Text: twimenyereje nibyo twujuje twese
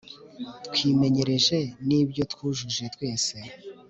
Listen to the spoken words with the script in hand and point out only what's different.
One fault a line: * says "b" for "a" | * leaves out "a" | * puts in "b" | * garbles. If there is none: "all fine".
all fine